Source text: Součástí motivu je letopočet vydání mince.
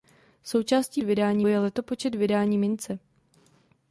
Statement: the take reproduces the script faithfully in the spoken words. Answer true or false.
false